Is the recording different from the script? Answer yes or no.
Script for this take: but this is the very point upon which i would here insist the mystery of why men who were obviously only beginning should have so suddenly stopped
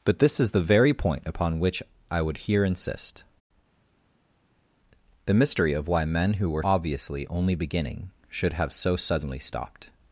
no